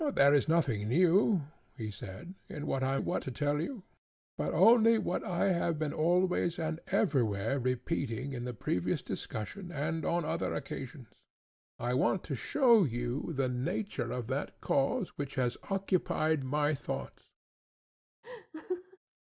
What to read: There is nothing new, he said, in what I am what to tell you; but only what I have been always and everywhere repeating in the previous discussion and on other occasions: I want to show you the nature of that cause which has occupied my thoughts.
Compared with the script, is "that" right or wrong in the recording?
right